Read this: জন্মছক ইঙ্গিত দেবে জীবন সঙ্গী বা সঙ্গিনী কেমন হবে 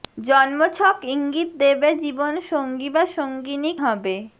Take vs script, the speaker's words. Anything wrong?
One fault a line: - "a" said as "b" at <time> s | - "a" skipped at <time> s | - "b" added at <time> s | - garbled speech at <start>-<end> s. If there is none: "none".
- "কেমন" skipped at 3.7 s